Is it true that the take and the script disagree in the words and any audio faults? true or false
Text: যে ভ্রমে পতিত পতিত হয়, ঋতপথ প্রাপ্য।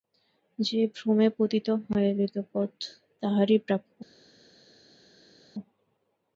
true